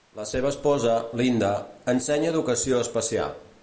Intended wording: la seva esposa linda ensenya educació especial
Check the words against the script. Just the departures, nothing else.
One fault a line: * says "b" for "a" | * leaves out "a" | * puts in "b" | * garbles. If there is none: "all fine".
all fine